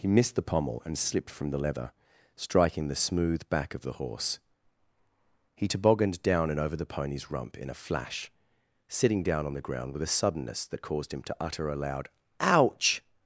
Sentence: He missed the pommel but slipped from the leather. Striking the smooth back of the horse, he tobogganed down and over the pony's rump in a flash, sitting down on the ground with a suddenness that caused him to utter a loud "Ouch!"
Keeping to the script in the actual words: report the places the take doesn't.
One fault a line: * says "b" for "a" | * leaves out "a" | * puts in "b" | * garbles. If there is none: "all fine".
* says "and" for "but"